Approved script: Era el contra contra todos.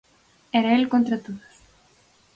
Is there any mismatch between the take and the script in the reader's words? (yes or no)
yes